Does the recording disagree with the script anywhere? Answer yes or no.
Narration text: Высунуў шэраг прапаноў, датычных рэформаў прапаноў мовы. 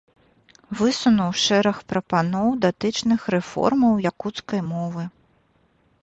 yes